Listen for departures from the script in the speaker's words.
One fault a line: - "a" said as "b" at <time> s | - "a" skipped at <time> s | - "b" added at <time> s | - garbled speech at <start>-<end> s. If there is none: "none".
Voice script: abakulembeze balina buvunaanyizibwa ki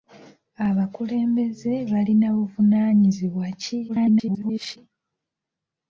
- garbled speech at 3.9-4.8 s